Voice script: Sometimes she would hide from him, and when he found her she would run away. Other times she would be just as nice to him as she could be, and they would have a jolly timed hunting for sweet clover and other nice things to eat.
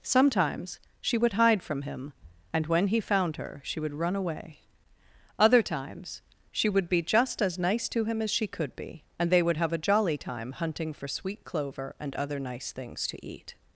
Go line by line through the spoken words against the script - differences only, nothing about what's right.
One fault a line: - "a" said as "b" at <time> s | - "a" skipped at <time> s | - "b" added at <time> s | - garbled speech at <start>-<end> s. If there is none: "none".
- "timed" said as "time" at 10.2 s